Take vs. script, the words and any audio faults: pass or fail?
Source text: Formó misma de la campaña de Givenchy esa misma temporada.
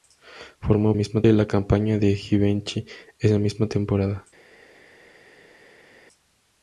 pass